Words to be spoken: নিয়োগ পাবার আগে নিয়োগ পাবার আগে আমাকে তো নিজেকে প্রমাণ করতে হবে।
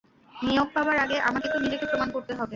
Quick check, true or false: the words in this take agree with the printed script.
false